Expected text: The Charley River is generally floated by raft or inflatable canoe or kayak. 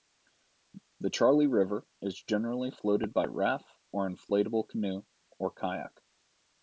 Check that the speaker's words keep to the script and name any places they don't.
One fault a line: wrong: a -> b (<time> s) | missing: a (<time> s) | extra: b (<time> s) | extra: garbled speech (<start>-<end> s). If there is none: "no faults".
no faults